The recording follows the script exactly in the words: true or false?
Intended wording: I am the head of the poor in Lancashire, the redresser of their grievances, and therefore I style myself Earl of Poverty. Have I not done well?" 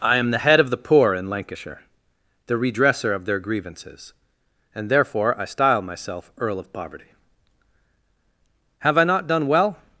true